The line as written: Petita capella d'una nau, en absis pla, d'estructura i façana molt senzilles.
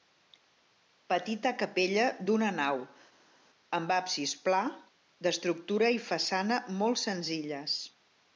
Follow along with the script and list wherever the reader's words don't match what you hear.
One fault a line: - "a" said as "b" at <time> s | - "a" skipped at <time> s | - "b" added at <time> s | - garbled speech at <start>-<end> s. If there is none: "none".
- "en" said as "amb" at 3.8 s